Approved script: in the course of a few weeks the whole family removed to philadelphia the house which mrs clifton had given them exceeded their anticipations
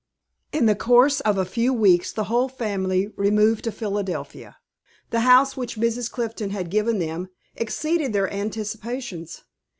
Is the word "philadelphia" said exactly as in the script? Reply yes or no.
yes